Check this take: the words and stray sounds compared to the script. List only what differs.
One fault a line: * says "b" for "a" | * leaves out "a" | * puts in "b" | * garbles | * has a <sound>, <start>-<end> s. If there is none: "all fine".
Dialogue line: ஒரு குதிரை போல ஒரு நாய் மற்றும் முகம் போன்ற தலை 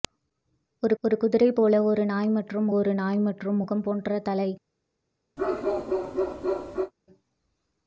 * puts in "ஒரு"
* puts in "ஒரு நாய் மற்றும்"
* has a bark, 5.4-6.9 s